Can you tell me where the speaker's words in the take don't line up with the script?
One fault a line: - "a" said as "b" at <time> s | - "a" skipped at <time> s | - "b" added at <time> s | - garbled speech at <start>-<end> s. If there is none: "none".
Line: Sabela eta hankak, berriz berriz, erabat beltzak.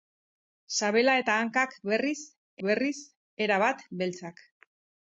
none